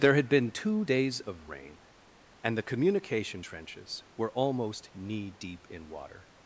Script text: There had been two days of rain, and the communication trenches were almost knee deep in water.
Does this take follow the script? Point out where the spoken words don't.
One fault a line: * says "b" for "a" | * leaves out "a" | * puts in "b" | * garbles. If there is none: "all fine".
all fine